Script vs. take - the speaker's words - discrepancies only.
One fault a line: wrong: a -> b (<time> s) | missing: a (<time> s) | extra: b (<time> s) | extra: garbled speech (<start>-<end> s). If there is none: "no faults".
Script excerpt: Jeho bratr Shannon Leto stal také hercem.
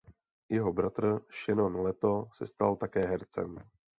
extra: se (2.4 s)